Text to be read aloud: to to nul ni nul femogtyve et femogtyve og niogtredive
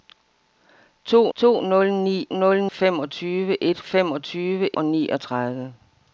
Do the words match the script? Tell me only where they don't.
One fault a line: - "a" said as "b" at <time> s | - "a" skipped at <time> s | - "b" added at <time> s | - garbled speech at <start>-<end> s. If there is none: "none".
none